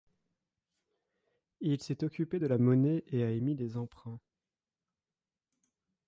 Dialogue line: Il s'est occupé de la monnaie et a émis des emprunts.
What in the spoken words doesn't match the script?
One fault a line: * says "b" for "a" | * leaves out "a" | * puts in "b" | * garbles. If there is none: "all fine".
all fine